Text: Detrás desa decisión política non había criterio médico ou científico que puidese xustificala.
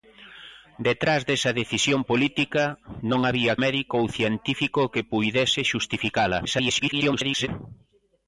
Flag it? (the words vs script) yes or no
yes